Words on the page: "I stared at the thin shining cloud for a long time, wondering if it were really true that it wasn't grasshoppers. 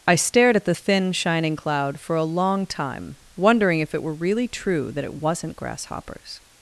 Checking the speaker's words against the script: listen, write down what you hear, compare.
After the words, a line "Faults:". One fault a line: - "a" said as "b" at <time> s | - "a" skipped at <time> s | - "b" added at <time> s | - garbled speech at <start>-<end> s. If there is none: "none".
"I stared at the thin shining cloud for a long time, wondering if it were really true that it wasn't grasshoppers.
Faults:
none